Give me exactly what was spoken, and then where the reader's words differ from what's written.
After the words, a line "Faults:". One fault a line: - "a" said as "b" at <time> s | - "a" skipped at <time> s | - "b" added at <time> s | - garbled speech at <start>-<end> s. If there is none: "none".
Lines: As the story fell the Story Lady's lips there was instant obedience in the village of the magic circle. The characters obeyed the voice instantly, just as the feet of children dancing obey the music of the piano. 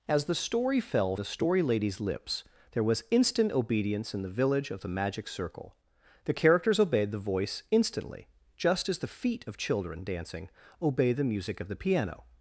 As the story fell the Story Lady's lips there was instant obedience in the village of the magic circle. The characters obeyed the voice instantly, just as the feet of children dancing obey the music of the piano.
Faults:
none